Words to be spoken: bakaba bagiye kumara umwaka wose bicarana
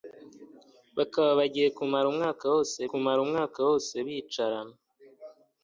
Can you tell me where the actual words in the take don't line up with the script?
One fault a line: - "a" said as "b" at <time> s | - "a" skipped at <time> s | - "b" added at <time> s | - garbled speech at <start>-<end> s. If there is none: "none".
- "kumara umwaka wose" added at 2.9 s